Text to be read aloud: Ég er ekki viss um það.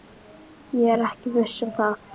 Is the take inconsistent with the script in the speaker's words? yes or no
no